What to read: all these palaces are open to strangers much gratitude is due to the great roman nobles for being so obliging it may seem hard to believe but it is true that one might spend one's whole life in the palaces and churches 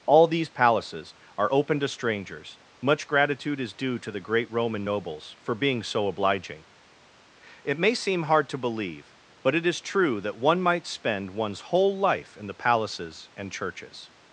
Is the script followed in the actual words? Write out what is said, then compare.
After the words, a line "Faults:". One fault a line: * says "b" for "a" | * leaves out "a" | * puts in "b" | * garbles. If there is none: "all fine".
all these palaces are open to strangers much gratitude is due to the great roman nobles for being so obliging it may seem hard to believe but it is true that one might spend one's whole life in the palaces and churches
Faults:
all fine